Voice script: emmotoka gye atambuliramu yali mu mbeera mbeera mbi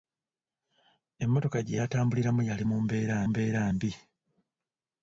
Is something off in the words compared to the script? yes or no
no